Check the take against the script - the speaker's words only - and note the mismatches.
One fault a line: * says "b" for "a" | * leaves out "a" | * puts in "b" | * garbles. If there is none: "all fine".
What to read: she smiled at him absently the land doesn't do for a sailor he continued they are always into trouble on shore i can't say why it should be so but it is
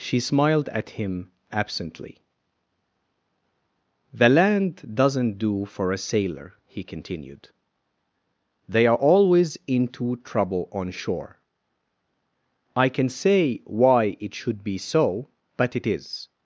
* says "can" for "can't"